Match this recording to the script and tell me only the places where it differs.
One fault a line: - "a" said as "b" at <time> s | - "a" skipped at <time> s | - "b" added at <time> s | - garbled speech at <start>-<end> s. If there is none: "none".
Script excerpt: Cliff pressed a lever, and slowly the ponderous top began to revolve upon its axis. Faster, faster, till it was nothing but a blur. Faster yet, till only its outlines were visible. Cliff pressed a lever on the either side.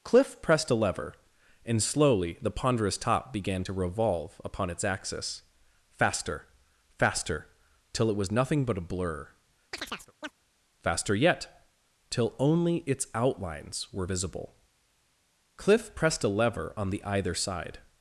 none